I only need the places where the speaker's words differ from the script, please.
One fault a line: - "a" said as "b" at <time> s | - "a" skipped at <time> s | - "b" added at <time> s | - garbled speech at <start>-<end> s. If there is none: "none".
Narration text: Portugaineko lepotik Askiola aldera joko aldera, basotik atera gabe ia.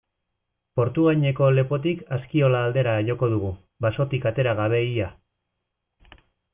- "aldera" said as "dugu" at 3.4 s